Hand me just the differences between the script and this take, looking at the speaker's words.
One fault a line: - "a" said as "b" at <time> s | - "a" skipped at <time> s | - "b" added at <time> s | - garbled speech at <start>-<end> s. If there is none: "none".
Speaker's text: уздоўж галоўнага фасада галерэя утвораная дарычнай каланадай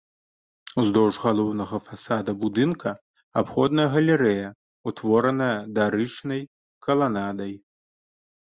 - "будынка абходная" added at 2.5 s